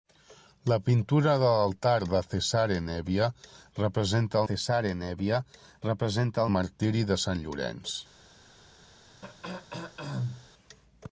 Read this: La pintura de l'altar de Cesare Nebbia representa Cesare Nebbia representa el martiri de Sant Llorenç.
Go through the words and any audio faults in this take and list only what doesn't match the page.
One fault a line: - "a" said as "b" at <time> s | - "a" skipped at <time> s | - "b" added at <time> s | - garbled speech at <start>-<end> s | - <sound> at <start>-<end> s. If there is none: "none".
- throat clearing at 9.2-10.5 s